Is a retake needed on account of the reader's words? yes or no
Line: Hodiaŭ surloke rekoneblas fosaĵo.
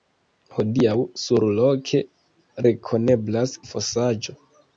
no